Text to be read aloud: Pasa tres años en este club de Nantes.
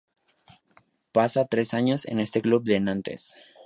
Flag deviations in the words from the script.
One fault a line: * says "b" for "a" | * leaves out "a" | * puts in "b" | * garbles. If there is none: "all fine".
all fine